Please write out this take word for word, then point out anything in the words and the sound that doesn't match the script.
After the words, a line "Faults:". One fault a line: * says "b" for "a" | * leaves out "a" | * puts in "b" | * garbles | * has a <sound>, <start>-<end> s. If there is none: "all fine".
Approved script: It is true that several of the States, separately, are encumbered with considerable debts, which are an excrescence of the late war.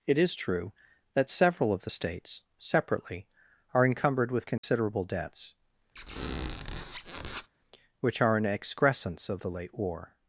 It is true that several of the States, separately, are encumbered with considerable debts, which are an excrescence of the late war.
Faults:
* has a dropout, 4.6-4.6 s
* has a squeak, 6.0-7.5 s